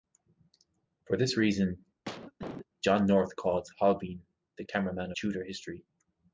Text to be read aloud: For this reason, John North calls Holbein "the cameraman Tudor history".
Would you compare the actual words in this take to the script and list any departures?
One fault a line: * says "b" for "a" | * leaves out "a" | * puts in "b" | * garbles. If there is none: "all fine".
all fine